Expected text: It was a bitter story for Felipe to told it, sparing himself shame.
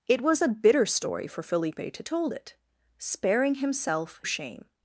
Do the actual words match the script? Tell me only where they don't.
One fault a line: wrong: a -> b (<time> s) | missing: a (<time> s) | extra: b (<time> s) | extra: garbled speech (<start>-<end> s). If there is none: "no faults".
no faults